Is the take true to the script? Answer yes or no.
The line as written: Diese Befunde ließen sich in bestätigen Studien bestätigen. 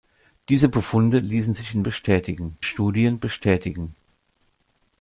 yes